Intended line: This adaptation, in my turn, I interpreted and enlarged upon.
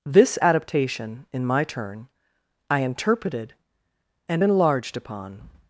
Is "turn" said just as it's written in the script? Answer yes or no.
yes